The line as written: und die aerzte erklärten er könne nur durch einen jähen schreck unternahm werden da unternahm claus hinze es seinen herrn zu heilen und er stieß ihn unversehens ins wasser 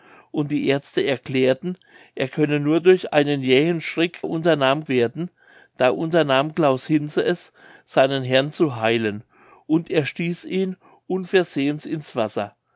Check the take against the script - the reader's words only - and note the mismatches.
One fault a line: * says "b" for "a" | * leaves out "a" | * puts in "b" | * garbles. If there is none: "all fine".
all fine